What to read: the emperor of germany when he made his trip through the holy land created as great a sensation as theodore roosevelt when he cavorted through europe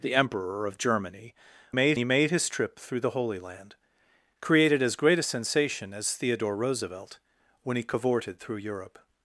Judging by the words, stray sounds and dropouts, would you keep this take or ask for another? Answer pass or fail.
fail